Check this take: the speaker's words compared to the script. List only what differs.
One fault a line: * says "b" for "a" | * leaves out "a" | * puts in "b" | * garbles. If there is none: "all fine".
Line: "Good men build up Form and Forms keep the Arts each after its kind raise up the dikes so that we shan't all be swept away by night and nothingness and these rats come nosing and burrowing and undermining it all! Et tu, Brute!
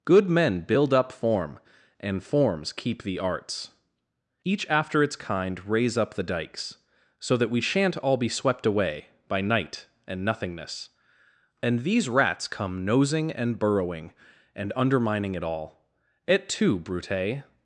all fine